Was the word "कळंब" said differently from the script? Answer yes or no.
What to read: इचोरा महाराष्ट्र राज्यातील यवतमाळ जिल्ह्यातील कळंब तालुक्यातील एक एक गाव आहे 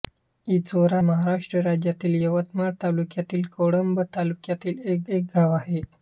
no